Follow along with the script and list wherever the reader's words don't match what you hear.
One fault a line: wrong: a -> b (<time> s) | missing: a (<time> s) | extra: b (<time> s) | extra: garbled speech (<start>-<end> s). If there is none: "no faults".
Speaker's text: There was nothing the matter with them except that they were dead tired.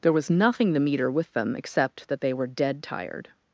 wrong: matter -> meter (0.8 s)